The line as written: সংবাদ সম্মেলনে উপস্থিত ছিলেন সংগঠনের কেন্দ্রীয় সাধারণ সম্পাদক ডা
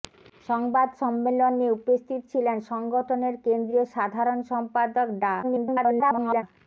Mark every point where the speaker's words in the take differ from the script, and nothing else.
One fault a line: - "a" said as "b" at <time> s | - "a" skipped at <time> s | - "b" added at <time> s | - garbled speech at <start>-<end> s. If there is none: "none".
- garbled speech at 5.4-6.4 s